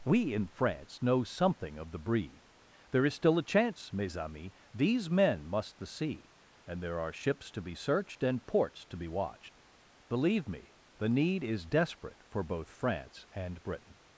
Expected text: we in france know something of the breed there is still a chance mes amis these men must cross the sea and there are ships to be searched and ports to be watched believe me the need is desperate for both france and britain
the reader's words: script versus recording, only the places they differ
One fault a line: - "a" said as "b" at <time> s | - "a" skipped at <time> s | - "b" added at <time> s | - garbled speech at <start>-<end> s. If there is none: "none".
- "cross" skipped at 5.8 s